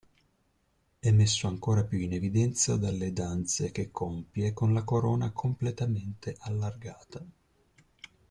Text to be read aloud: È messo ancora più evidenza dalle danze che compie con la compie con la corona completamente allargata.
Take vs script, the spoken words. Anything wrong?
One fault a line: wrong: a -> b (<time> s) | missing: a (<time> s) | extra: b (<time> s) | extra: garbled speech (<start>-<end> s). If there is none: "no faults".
extra: in (2.0 s)
missing: compie con la (4.8 s)